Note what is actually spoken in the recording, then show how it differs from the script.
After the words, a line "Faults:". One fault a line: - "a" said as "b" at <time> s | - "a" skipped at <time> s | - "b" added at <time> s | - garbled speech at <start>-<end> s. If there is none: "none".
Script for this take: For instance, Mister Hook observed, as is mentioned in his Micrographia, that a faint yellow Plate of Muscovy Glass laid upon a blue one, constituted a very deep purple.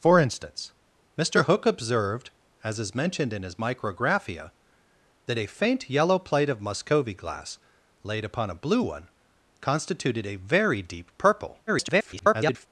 For instance, Mister Hook observed, as is mentioned in his Micrographia, that a faint yellow Plate of Muscovy Glass laid upon a blue one, constituted a very deep purple. [garbled]
Faults:
- garbled speech at 11.7-12.7 s